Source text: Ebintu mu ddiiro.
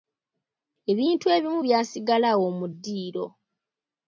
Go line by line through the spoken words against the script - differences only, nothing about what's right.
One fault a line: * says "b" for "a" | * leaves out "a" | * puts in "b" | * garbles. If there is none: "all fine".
* puts in "ebimu byasigala awo"